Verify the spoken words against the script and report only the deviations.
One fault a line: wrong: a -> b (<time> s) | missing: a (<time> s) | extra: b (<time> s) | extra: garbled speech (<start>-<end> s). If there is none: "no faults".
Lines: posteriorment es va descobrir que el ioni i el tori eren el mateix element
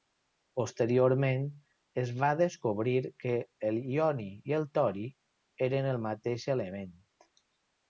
no faults